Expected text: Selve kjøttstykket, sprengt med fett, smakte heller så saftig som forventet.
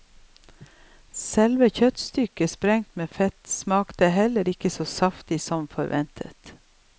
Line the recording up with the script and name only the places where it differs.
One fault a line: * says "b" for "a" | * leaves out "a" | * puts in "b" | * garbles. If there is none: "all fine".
* puts in "ikke"